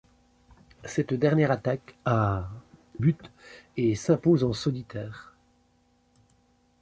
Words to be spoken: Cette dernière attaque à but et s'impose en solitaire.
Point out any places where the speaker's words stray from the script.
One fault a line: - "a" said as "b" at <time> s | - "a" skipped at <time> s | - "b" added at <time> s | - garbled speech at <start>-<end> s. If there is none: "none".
none